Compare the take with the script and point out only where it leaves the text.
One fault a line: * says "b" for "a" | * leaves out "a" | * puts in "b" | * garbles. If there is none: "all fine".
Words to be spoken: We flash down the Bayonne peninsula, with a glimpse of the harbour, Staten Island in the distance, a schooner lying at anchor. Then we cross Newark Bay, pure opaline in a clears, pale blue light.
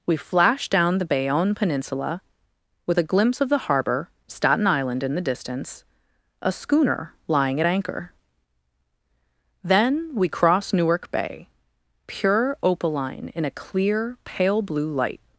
* says "clear" for "clears"